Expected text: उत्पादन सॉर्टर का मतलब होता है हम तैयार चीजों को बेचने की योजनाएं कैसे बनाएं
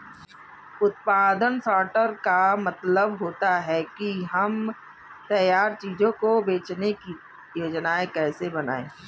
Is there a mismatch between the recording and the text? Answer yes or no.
yes